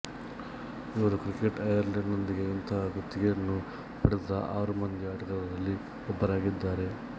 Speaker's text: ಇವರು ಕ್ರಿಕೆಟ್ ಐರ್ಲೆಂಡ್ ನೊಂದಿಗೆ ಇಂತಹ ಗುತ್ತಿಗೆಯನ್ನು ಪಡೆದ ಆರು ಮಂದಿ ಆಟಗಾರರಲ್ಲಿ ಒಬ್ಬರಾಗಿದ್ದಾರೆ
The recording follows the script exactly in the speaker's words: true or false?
true